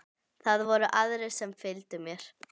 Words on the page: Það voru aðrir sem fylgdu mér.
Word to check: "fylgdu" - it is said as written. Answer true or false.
true